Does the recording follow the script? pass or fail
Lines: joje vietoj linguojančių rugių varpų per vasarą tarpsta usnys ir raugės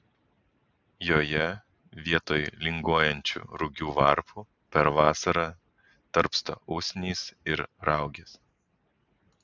pass